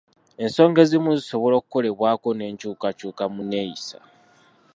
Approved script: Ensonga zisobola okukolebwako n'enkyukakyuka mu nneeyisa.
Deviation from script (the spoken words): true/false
true